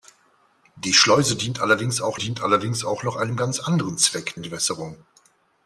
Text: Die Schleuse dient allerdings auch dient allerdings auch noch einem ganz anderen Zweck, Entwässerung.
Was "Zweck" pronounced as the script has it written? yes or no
yes